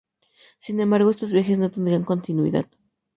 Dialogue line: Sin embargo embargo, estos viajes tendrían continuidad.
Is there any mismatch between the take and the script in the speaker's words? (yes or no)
yes